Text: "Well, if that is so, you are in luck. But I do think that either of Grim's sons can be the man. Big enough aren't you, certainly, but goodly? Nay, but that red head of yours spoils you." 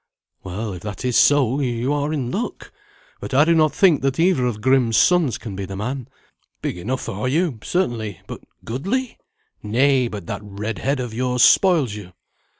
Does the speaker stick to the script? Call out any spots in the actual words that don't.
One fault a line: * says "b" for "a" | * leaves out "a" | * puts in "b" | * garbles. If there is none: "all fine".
* puts in "not"
* says "are" for "aren't"